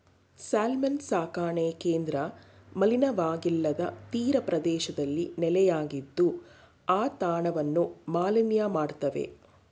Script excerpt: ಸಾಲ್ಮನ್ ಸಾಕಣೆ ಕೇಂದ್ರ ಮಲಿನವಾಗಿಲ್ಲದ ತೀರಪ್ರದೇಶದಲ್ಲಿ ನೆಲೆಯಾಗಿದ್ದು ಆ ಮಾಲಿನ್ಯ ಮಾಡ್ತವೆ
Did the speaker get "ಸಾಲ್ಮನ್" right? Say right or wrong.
right